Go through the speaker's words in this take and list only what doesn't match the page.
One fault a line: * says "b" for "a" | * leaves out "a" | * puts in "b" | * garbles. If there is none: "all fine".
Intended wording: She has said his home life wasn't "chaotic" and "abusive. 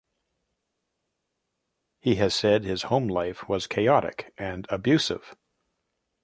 * says "He" for "She"
* says "was" for "wasn't"